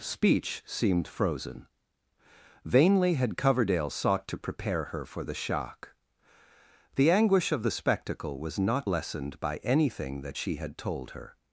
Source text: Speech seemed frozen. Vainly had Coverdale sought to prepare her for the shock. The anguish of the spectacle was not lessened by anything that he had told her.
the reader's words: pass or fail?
fail